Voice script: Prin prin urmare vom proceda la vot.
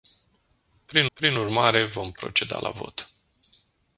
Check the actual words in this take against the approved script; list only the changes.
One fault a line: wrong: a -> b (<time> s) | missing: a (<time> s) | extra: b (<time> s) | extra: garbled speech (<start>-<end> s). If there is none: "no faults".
no faults